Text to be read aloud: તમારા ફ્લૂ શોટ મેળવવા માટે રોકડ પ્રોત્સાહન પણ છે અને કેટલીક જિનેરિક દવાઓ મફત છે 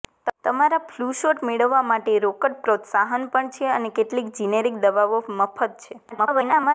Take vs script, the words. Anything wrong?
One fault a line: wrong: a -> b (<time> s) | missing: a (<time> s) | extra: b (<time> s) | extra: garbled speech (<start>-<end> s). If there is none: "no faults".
extra: garbled speech (6.1-6.7 s)